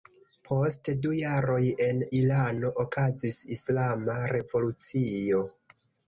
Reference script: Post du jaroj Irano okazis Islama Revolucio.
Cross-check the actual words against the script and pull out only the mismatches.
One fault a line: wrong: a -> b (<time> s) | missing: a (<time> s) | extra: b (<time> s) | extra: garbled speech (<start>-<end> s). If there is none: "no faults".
extra: en (1.9 s)